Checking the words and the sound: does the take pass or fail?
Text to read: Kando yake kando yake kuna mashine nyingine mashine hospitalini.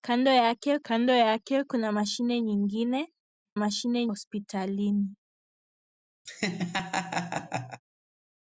fail